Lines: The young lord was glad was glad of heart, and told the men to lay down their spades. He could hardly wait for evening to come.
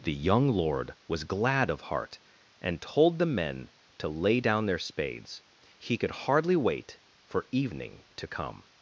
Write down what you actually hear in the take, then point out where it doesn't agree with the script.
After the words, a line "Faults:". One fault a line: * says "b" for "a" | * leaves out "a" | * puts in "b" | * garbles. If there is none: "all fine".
The young lord was glad of heart, and told the men to lay down their spades. He could hardly wait for evening to come.
Faults:
* leaves out "was glad"